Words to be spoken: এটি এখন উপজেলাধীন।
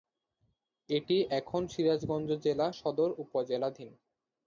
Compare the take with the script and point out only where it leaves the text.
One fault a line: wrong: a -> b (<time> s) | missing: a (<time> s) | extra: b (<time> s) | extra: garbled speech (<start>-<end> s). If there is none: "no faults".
extra: সিরাজগঞ্জ জেলা সদর (1.7 s)